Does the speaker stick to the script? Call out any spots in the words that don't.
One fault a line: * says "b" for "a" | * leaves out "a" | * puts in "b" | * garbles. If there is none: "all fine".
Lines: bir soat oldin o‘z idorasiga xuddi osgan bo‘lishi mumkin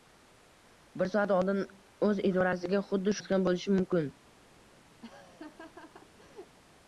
all fine